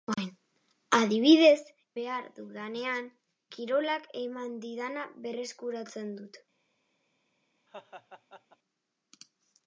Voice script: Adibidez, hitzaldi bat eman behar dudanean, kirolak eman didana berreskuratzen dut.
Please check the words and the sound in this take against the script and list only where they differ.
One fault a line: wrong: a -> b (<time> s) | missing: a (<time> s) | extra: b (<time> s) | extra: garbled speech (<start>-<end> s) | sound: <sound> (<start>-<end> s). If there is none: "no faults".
missing: hitzaldi bat eman (1.6 s)
sound: laugh (7.7-8.6 s)